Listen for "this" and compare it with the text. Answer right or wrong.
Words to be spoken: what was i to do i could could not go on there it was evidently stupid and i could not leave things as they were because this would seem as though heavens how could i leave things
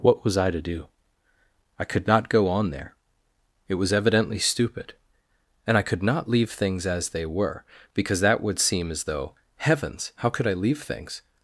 wrong